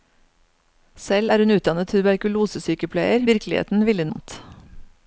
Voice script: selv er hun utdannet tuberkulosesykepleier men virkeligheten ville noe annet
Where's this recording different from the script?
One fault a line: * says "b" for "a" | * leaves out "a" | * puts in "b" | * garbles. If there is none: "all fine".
* leaves out "men"
* leaves out "noe"